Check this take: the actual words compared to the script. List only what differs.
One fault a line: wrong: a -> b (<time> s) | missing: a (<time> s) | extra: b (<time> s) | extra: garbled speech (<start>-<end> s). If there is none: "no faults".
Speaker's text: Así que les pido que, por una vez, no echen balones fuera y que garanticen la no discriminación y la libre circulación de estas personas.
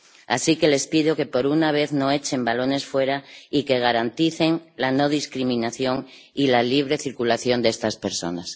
no faults